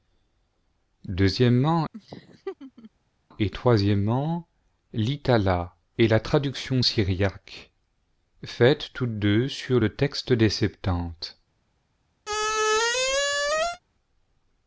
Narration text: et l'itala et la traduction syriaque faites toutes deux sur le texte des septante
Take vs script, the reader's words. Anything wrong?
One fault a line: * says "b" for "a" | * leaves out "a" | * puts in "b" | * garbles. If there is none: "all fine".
all fine